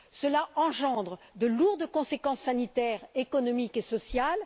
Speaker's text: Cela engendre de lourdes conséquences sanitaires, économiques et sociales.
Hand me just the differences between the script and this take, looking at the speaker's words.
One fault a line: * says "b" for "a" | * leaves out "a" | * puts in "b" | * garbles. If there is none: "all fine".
all fine